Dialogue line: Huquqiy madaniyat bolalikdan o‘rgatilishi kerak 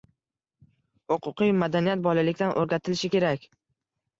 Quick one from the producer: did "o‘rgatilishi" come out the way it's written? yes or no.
yes